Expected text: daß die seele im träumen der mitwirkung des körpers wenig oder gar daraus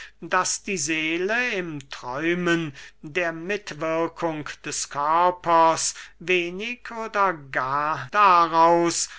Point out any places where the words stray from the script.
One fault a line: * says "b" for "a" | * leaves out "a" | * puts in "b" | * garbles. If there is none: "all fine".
all fine